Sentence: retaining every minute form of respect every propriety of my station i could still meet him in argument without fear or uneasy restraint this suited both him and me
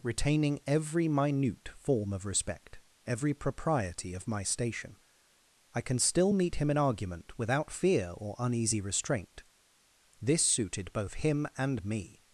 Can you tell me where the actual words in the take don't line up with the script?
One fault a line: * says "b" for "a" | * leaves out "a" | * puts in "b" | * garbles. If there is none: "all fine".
* says "can" for "could"